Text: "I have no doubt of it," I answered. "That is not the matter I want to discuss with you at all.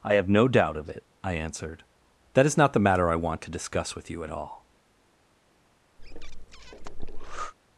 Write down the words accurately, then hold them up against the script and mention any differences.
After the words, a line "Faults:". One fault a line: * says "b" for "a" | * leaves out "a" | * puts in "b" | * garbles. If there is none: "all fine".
"I have no doubt of it," I answered. "That is not the matter I want to discuss with you at all.
Faults:
all fine